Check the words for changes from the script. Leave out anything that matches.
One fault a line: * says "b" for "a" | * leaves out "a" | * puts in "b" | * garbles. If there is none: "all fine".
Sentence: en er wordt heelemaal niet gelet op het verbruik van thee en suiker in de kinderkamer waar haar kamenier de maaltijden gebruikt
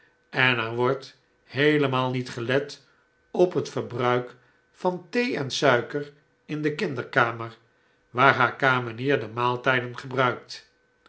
all fine